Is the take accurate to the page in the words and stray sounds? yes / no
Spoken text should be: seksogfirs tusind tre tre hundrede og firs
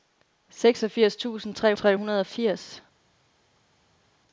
yes